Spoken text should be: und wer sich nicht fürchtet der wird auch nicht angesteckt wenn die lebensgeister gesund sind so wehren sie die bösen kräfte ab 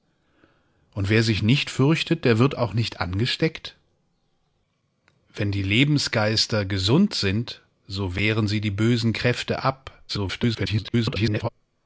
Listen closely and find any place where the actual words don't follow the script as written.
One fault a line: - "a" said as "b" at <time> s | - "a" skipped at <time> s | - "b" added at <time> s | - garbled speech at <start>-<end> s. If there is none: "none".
- garbled speech at 10.1-11.5 s